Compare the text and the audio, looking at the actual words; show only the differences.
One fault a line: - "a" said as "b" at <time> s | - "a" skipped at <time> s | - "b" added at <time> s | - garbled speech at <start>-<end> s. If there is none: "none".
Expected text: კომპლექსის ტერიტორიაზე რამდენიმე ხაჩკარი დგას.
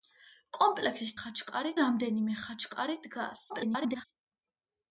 - "ტერიტორიაზე" said as "ხაჩკარი" at 1.2 s
- garbled speech at 3.5-4.0 s